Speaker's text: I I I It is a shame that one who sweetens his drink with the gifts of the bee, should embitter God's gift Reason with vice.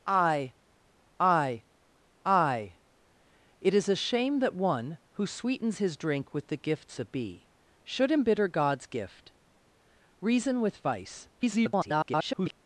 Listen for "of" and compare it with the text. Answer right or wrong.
wrong